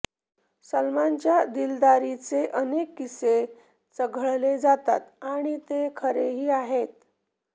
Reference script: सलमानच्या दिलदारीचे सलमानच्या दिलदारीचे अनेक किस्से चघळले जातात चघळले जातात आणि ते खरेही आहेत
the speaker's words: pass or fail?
fail